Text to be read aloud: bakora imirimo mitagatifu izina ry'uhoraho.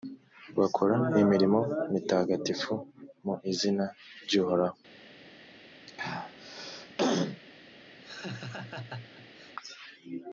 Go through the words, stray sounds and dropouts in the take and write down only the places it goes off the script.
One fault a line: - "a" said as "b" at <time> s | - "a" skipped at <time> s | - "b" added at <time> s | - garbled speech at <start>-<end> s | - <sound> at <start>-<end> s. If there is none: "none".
- "mu" added at 3.2 s
- throat clearing at 5.9-7.4 s
- laugh at 8.0-9.6 s